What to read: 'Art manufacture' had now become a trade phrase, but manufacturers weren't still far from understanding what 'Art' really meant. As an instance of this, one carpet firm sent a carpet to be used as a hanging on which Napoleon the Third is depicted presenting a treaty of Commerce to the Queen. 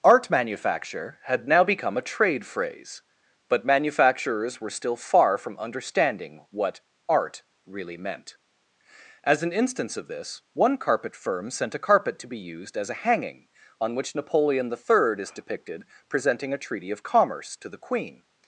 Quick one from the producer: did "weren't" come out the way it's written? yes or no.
no